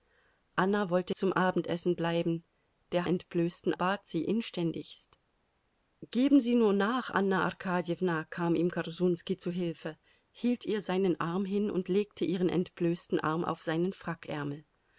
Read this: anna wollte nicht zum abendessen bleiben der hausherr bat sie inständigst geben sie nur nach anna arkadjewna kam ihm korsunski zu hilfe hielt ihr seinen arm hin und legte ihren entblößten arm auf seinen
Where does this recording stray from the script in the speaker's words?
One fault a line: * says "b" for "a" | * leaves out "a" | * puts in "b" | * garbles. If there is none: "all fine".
* leaves out "nicht"
* says "entblößten" for "hausherr"